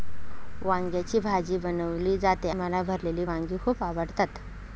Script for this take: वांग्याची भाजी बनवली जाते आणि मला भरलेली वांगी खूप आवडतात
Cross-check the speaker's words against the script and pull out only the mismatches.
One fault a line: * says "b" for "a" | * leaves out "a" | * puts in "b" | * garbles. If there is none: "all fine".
* leaves out "आणि"